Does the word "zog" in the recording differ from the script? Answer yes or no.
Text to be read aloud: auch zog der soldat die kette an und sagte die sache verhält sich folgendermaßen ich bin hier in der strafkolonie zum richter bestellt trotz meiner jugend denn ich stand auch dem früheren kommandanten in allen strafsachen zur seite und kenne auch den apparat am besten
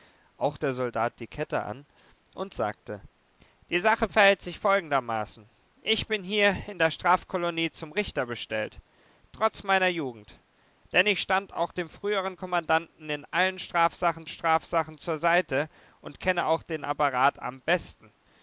yes